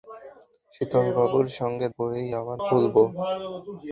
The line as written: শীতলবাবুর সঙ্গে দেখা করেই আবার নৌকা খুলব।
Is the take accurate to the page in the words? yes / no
no